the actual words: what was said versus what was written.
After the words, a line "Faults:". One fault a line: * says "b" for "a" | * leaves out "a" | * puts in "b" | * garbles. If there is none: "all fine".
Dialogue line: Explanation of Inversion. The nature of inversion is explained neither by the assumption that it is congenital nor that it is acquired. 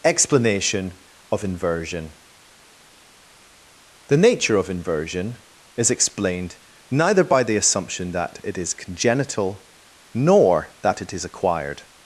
Explanation of Inversion. The nature of inversion is explained neither by the assumption that it is congenital nor that it is acquired.
Faults:
all fine